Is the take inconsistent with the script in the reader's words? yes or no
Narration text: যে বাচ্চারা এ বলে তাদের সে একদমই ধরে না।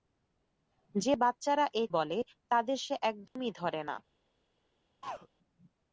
no